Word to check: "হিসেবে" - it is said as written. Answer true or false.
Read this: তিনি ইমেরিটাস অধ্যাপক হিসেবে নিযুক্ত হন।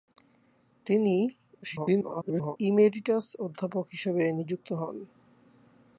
true